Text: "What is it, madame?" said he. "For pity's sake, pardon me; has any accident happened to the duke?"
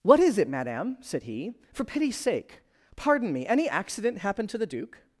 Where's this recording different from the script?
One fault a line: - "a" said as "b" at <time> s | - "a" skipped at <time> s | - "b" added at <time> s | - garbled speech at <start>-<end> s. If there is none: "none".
- "has" skipped at 3.5 s